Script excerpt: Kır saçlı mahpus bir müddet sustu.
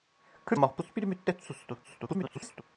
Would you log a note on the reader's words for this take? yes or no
yes